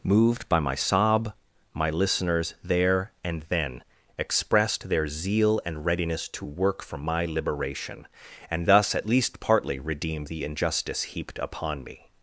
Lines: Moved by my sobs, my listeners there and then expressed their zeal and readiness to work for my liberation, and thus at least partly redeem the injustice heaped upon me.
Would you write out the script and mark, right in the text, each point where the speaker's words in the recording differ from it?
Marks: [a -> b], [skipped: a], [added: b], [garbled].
Moved by my [sobs, -> sob] my listeners there and then expressed their zeal and readiness to work for my liberation, and thus at least partly redeem the injustice heaped upon me.